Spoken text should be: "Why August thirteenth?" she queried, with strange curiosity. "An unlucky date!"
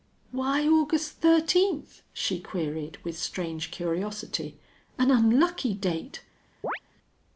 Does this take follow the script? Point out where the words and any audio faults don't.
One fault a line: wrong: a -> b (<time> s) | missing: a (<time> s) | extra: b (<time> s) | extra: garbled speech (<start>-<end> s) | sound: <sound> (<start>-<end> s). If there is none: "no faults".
sound: chirp (6.6-6.8 s)